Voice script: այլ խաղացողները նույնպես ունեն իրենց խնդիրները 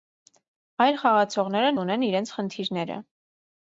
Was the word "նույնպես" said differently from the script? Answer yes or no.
yes